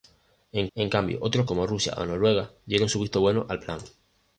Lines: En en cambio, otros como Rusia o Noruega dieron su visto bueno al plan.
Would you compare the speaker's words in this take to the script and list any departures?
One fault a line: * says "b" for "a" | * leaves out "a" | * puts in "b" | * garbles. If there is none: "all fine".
all fine